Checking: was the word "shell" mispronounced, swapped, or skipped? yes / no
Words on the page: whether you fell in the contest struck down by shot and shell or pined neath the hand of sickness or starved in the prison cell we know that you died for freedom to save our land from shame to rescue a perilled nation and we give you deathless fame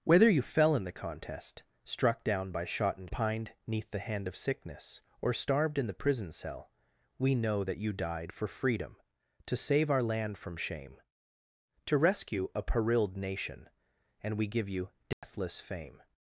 yes